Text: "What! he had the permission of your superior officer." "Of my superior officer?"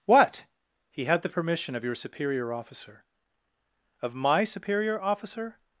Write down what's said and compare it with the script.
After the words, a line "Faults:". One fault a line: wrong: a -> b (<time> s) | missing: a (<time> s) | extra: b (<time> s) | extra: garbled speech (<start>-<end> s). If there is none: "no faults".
"What! he had the permission of your superior officer." "Of my superior officer?"
Faults:
no faults